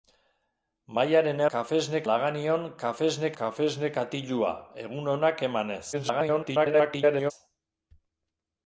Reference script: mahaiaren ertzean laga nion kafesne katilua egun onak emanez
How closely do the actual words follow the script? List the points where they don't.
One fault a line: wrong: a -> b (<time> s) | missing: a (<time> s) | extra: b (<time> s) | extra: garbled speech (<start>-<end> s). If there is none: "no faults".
wrong: ertzean -> kafesne (1.5 s)
extra: kafesne (3.4 s)
extra: garbled speech (5.9-7.3 s)